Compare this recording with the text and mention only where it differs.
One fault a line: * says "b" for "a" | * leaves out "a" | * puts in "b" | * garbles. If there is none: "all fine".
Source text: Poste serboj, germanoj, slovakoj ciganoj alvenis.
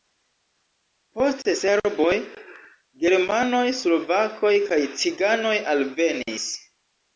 * puts in "kaj"